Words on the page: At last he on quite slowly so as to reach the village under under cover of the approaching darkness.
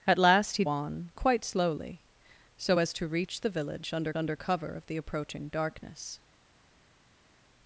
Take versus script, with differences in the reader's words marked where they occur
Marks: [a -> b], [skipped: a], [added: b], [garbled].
At last he on quite slowly so as to reach the village under under cover of the approaching darkness.